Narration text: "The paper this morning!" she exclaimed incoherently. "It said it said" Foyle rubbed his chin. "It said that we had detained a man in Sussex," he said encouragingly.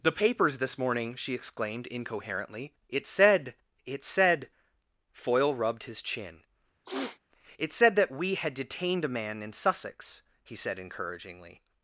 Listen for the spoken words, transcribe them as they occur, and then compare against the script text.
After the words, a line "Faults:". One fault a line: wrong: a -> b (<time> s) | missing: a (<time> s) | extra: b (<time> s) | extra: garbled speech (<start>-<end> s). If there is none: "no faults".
"The papers this morning!" she exclaimed incoherently. "It said it said" Foyle rubbed his chin. "It said that we had detained a man in Sussex," he said encouragingly.
Faults:
wrong: paper -> papers (0.1 s)